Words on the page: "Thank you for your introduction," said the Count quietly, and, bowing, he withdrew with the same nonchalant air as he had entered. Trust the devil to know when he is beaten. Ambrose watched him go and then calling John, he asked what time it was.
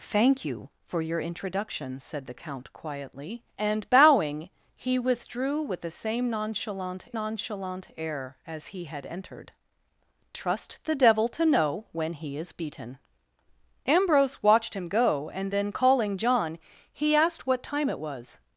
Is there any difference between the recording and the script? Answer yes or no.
yes